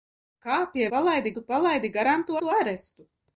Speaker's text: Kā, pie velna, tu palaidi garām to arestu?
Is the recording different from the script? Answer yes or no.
yes